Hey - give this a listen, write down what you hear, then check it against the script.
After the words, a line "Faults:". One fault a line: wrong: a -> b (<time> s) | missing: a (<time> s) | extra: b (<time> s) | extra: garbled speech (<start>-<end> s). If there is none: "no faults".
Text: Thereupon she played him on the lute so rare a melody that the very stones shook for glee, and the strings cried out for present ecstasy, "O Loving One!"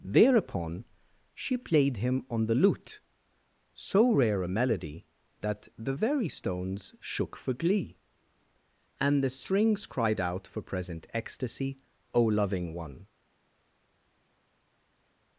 Thereupon she played him on the lute so rare a melody that the very stones shook for glee, and the strings cried out for present ecstasy, "O Loving One!"
Faults:
no faults